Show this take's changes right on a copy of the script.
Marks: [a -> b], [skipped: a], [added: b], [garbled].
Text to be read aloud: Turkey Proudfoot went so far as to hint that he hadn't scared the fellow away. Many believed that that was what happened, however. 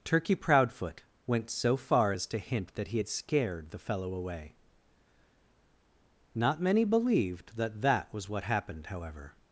Turkey Proudfoot went so far as to hint that he [hadn't -> had] scared the fellow away. [added: Not] Many believed that that was what happened, however.